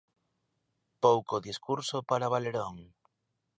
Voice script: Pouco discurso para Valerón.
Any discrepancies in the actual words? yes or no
no